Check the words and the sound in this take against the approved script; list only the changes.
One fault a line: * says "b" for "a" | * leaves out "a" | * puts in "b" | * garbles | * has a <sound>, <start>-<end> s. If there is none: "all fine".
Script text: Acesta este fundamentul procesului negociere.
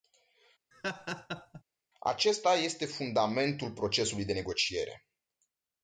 * has a laugh, 0.7-1.6 s
* puts in "de"